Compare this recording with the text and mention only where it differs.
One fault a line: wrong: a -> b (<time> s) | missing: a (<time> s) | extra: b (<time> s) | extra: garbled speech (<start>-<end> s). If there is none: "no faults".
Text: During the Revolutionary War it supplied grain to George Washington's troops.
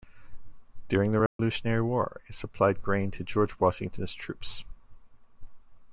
no faults